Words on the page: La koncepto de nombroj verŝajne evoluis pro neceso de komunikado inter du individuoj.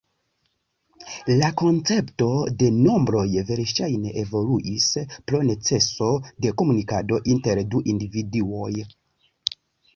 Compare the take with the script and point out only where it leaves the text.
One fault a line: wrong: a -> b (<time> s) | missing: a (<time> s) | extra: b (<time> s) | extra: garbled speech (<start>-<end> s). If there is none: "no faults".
no faults